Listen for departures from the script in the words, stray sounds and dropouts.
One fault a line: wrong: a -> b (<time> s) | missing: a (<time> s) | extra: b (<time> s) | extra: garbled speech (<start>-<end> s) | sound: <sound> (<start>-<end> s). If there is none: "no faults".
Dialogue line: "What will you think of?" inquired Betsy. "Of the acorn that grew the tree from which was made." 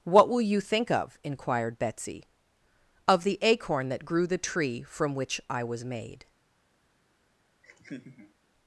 extra: I (5.5 s)
sound: laugh (7.6-8.3 s)